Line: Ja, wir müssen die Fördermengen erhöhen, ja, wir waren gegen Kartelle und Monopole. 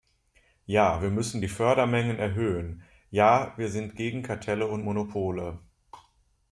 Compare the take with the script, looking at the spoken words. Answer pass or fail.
fail